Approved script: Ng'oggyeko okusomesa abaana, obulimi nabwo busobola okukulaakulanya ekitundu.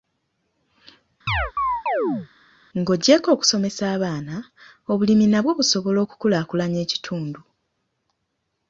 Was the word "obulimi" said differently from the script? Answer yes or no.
no